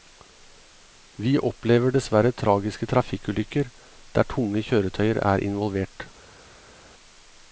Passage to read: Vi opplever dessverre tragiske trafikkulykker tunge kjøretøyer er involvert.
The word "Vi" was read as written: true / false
true